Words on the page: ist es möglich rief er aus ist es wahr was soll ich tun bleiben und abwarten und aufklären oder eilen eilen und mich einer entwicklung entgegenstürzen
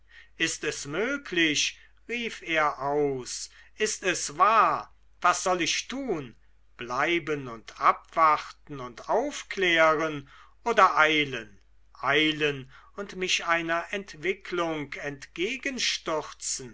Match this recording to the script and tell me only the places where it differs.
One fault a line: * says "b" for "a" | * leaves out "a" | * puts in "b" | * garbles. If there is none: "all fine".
all fine